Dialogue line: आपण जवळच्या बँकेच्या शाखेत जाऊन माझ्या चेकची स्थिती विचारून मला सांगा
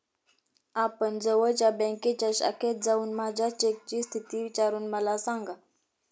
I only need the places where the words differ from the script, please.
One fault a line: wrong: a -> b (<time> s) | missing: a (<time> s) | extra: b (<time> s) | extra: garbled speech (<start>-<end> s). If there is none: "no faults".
no faults